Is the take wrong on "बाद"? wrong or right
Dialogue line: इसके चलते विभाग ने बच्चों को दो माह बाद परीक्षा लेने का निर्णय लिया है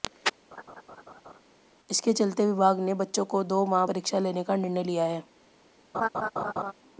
wrong